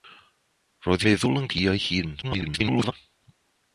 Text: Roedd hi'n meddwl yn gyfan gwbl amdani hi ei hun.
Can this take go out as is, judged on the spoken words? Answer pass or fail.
fail